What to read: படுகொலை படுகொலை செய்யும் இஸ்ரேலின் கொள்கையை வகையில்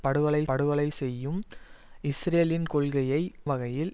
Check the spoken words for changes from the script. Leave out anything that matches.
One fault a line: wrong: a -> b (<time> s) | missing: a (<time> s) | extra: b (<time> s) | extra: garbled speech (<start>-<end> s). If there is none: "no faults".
no faults